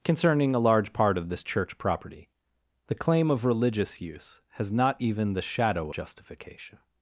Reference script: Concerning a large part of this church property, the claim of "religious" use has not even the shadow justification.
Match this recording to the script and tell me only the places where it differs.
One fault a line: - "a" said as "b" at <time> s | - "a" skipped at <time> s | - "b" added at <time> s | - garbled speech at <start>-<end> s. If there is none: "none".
none